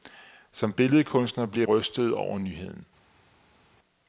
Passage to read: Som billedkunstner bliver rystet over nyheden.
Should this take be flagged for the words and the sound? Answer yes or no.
no